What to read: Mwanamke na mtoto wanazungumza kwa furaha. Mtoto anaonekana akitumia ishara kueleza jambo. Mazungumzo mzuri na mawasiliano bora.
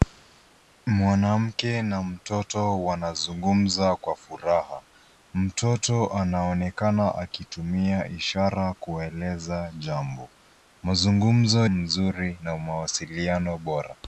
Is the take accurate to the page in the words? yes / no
yes